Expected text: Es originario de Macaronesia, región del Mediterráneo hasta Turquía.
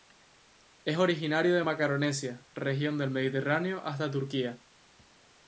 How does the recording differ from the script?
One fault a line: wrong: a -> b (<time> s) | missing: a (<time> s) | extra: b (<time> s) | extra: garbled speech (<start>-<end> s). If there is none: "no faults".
no faults